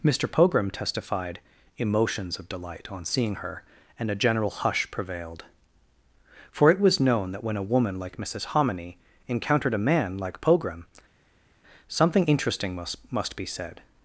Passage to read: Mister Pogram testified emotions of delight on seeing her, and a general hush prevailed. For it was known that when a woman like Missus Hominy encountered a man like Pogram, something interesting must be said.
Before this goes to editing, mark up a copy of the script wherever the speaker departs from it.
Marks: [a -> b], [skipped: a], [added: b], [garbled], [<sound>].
Mister Pogram testified emotions of delight on seeing her, and a general hush prevailed. For it was known that when a woman like Missus Hominy encountered a man like Pogram, something interesting must [added: must] be said.